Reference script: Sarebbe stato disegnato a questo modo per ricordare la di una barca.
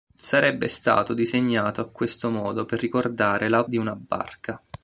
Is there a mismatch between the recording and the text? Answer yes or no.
no